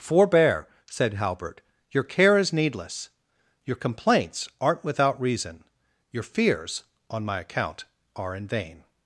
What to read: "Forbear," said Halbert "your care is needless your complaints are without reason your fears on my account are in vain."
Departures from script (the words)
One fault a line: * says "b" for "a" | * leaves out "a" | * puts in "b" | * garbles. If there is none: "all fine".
* says "aren't" for "are"